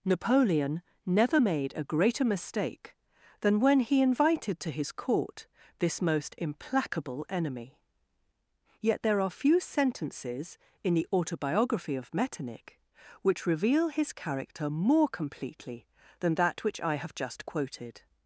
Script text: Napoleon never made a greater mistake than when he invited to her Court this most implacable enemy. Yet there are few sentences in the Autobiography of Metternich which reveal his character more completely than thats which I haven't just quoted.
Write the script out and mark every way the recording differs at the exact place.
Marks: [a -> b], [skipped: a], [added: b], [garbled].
Napoleon never made a greater mistake than when he invited to [her -> his] Court this most implacable enemy. Yet there are few sentences in the Autobiography of Metternich which reveal his character more completely than [thats -> that] which I [haven't -> have] just quoted.